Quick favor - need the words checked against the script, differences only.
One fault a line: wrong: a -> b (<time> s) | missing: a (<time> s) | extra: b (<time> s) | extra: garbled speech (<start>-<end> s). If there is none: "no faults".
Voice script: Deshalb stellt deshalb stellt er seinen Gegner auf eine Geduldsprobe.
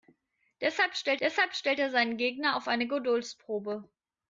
no faults